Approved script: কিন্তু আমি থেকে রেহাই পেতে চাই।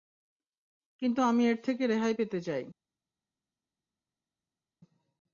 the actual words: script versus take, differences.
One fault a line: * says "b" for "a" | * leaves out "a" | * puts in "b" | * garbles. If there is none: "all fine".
* puts in "এর"